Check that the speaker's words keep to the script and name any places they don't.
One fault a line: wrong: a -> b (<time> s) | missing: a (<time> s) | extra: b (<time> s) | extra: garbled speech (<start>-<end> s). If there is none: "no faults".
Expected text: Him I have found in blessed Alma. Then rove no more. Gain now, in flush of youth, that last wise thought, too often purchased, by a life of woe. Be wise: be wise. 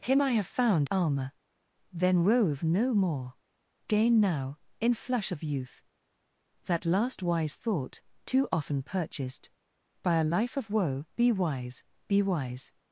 missing: in blessed (0.9 s)